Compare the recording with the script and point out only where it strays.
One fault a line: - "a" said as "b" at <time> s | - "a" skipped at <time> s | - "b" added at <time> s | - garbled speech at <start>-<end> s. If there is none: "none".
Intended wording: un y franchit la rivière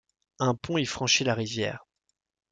- "pont" added at 0.5 s